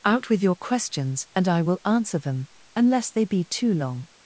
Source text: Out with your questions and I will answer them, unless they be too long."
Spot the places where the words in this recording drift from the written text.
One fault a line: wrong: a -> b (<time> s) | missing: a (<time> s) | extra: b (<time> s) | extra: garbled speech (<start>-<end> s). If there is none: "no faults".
no faults